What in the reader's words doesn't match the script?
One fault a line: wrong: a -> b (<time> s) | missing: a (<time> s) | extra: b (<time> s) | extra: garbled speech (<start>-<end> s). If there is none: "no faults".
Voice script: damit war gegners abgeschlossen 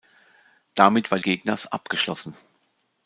no faults